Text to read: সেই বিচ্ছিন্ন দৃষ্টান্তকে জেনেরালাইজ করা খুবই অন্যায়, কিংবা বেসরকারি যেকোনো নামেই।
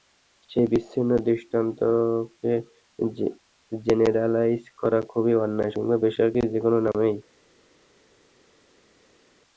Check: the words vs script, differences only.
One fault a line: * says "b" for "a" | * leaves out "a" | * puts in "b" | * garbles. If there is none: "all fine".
all fine